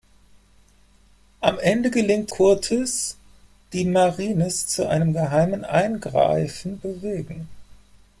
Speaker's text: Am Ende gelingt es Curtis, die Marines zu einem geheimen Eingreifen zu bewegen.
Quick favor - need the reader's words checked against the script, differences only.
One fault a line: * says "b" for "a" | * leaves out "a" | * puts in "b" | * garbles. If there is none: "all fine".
* leaves out "es"
* leaves out "zu"